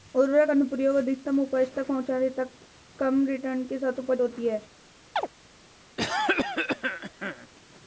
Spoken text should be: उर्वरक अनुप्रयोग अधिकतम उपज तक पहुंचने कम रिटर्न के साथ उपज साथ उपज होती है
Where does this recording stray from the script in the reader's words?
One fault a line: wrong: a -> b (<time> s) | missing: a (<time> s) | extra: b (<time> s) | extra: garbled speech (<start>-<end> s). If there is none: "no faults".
extra: तक (2.3 s)
missing: साथ उपज (4.2 s)